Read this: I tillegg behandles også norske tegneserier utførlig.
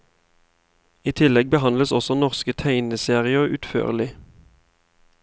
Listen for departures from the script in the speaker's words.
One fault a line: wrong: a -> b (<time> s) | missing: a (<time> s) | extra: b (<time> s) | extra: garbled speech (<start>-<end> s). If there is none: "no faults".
no faults